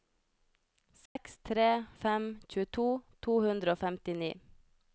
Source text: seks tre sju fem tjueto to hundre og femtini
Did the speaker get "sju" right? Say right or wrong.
wrong